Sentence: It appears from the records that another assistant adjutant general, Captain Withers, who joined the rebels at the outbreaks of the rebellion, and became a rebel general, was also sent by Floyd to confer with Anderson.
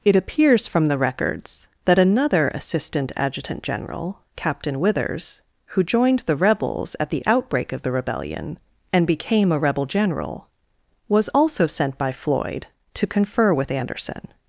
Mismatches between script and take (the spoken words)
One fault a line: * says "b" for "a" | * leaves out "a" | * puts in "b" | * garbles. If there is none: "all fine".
* says "outbreak" for "outbreaks"